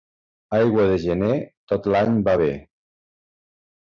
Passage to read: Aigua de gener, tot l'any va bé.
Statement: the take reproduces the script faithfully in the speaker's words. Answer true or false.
true